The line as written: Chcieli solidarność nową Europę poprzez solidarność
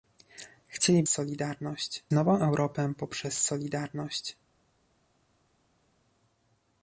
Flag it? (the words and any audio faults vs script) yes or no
no